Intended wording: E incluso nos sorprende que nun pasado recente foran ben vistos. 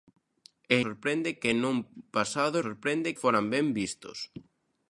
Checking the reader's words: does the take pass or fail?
fail